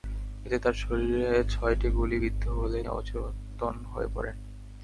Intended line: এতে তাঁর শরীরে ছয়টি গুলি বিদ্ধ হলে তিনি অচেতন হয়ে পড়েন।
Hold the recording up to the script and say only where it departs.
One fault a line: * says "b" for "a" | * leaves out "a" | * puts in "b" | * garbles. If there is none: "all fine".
* leaves out "তিনি"